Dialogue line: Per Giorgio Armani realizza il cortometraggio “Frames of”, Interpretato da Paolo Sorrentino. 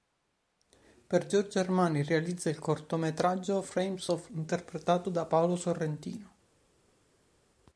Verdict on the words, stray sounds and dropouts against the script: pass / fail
pass